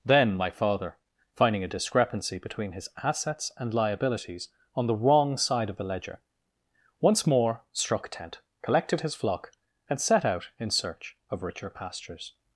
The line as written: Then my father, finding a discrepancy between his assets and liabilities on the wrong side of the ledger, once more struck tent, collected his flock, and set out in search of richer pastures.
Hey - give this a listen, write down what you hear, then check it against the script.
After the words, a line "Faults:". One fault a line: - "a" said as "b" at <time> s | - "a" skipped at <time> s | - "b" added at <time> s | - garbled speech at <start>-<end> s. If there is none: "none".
Then my father, finding a discrepancy between his assets and liabilities on the wrong side of the ledger, once more struck tent, collected his flock, and set out in search of richer pastures.
Faults:
none